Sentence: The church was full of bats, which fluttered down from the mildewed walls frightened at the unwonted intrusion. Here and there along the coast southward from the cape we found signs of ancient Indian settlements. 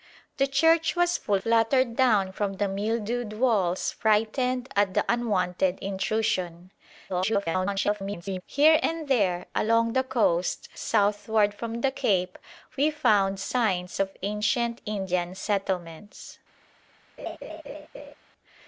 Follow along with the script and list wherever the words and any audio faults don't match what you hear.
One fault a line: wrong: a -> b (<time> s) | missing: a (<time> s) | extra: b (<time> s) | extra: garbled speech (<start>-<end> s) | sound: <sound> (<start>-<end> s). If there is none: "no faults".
missing: of bats which (1.4 s)
extra: garbled speech (7.1-8.4 s)
sound: laugh (17.2-18.1 s)